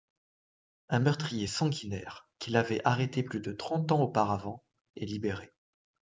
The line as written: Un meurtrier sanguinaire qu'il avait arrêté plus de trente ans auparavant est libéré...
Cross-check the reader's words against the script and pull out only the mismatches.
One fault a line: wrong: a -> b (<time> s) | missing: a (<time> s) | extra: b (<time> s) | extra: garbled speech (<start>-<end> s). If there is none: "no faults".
no faults